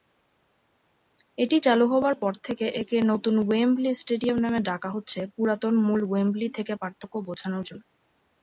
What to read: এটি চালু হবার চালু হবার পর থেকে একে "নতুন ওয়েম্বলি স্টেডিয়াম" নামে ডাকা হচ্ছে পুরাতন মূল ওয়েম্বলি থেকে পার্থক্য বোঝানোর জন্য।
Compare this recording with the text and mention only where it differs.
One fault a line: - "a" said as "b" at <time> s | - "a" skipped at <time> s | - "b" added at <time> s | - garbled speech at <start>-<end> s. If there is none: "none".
- "চালু হবার" skipped at 2.1 s